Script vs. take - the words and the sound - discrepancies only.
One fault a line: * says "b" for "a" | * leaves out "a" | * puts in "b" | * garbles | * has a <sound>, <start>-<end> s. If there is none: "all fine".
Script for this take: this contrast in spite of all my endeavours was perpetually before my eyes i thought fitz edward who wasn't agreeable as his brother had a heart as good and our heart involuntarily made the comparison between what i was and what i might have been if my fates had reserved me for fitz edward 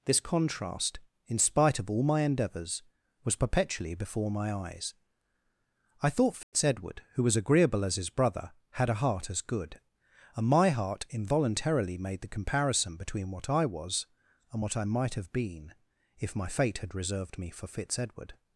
* has a dropout, 6.4-6.5 s
* says "was" for "wasn't"
* says "my" for "our"
* says "fate" for "fates"